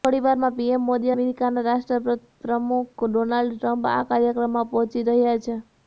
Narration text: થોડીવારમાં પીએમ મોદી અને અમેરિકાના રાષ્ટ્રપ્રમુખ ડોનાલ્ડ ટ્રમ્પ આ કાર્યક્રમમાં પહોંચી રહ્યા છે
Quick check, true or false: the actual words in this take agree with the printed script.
false